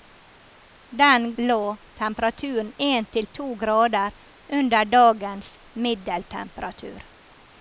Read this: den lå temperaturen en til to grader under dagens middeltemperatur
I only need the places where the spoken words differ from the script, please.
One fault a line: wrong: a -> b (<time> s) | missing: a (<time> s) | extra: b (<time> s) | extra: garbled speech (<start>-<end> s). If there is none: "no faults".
no faults